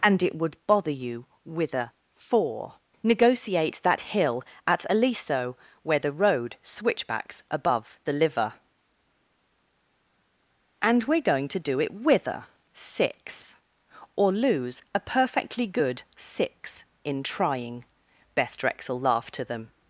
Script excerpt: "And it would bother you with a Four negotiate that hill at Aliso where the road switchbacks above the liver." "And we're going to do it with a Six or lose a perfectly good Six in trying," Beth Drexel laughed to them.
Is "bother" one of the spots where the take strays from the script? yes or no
no